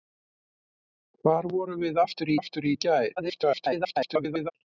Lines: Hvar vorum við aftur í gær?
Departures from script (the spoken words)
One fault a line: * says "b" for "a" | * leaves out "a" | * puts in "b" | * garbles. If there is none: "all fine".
* puts in "aftur"
* garbles